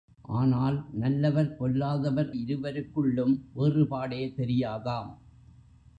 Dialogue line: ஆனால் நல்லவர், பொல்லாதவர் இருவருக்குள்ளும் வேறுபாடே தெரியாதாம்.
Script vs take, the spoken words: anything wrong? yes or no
no